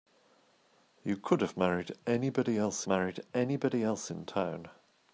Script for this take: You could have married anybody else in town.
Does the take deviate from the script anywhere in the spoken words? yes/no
yes